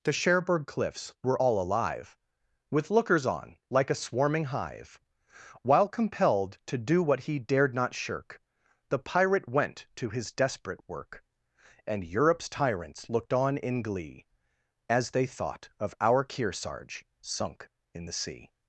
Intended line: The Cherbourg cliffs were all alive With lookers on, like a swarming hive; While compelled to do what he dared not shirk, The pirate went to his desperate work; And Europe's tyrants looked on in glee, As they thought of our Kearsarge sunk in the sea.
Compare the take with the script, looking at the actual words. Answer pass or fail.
pass